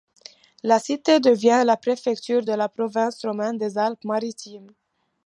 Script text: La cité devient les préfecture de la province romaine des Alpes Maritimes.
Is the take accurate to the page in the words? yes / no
no